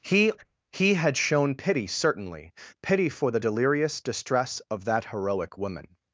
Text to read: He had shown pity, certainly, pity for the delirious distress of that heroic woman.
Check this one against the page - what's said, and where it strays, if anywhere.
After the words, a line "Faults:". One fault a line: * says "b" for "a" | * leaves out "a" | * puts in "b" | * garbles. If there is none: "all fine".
He he had shown pity, certainly, pity for the delirious distress of that heroic woman.
Faults:
* puts in "he"